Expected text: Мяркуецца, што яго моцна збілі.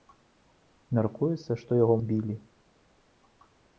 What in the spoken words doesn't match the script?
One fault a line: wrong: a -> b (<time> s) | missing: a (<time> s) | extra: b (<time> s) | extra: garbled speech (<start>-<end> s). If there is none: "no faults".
missing: моцна (1.9 s)